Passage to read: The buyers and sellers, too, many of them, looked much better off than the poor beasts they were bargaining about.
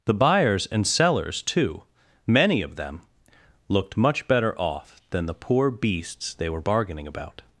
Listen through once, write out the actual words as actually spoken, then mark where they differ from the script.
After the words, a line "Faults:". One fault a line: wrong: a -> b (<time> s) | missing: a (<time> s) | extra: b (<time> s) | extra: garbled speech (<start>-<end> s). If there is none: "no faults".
The buyers and sellers, too, many of them, looked much better off than the poor beasts they were bargaining about.
Faults:
no faults